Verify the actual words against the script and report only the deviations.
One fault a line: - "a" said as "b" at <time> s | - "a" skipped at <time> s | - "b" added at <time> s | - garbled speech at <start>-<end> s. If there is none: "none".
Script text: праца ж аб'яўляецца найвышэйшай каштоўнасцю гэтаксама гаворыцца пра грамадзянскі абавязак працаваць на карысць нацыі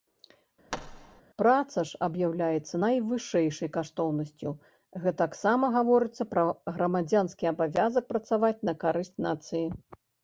none